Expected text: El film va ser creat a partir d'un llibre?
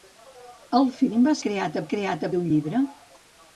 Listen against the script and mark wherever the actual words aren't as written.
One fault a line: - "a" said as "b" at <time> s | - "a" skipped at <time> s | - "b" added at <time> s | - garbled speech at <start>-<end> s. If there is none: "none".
- "ser" skipped at 1.4 s
- "partir" said as "creat" at 1.9 s